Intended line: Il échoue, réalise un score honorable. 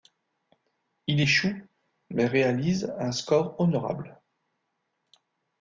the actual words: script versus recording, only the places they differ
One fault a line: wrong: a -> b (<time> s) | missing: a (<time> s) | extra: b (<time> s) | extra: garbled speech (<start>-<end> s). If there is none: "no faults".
extra: mais (2.1 s)